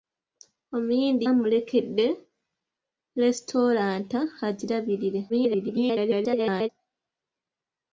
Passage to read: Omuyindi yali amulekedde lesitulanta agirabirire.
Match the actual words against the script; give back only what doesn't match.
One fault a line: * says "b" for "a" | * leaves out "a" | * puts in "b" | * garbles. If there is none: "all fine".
* leaves out "yali"
* garbles